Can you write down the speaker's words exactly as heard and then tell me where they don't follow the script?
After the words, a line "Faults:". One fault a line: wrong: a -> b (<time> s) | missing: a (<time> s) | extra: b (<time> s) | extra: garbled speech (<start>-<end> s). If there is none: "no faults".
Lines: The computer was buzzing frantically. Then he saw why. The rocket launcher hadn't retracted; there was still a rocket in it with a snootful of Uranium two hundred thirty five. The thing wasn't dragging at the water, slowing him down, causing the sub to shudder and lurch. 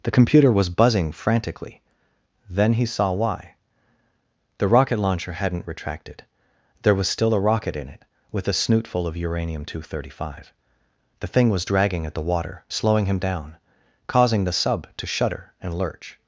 The computer was buzzing frantically. Then he saw why. The rocket launcher hadn't retracted; there was still a rocket in it with a snootful of Uranium two hundred thirty five. The thing was dragging at the water, slowing him down, causing the sub to shudder and lurch.
Faults:
wrong: wasn't -> was (11.5 s)